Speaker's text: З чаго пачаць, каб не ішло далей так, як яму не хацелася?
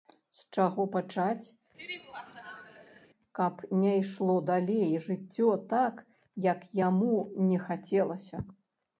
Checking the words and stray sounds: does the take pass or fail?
fail